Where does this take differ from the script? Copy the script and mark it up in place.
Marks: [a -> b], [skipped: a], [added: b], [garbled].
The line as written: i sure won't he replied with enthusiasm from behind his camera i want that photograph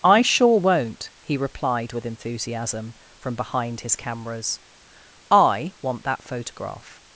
i sure won't he replied with enthusiasm from behind his [camera -> cameras] i want that photograph